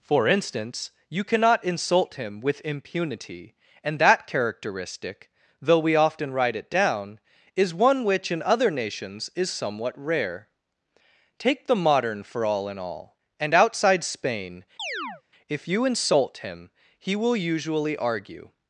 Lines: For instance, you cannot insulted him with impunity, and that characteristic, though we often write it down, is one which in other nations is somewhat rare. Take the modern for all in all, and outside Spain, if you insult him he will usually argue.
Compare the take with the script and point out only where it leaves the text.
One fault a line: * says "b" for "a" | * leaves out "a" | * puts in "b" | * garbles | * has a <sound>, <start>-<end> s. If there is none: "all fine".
* says "insult" for "insulted"
* has a chirp, 14.8-15.2 s